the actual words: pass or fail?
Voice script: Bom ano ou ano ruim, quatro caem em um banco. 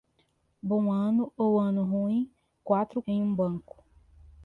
fail